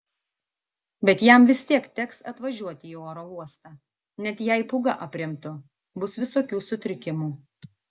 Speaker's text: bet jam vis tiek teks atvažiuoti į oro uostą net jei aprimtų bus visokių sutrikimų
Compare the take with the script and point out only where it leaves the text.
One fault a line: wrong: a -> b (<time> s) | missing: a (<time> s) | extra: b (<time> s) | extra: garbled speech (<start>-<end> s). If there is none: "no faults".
extra: pūga (4.7 s)